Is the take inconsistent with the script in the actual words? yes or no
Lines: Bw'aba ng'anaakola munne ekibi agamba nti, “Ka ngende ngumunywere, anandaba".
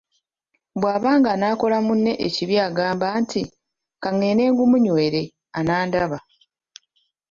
no